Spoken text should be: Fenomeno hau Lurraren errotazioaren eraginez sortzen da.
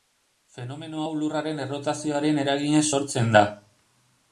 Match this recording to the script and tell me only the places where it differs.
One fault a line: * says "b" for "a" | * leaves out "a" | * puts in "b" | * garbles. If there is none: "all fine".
all fine